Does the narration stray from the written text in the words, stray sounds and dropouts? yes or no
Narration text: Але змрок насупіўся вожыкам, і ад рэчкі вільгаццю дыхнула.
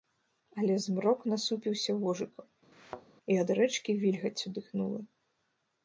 yes